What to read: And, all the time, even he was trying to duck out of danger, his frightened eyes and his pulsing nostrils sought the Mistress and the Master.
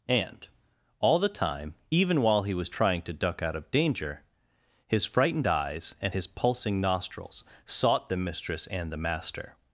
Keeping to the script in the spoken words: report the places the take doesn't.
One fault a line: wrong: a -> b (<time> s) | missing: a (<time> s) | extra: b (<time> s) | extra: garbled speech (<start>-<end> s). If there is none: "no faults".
extra: while (2.2 s)